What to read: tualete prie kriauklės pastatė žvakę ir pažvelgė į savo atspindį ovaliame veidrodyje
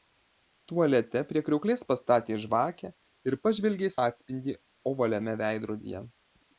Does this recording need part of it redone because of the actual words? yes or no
yes